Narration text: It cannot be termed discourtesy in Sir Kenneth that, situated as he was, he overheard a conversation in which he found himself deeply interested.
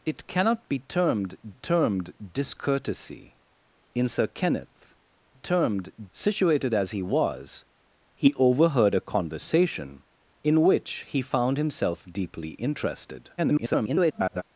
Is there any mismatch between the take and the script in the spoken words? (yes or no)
yes